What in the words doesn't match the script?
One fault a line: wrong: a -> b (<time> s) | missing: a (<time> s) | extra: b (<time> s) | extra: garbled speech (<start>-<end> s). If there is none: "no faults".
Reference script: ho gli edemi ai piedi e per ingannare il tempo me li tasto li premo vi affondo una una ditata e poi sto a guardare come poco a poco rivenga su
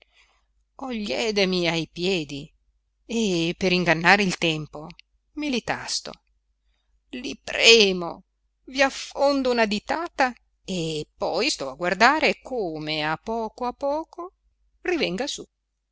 missing: una (9.7 s)
extra: a (13.0 s)